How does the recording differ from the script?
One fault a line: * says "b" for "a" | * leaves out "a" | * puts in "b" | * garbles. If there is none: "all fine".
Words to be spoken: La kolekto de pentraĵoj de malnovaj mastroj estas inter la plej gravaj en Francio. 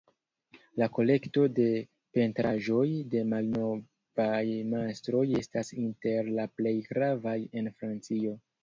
all fine